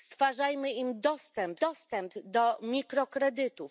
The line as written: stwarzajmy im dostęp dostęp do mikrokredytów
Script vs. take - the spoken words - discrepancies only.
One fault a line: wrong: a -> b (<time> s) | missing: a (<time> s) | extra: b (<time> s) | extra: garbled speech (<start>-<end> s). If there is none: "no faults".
no faults